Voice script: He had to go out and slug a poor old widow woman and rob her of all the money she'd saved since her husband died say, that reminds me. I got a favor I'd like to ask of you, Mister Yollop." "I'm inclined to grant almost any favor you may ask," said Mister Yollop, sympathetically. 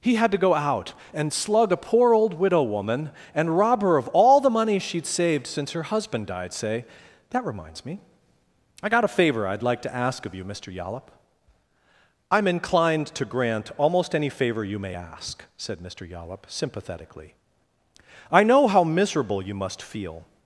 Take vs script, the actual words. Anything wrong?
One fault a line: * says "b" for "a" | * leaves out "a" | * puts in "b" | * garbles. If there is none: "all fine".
* puts in "I know how miserable you must feel"